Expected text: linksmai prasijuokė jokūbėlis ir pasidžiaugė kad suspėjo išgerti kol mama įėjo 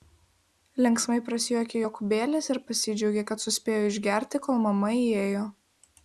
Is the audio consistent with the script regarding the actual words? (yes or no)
yes